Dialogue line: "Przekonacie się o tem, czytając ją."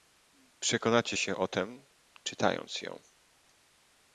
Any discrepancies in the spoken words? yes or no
no